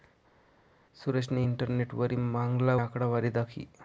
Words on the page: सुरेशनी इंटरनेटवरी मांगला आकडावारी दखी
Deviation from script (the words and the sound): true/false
false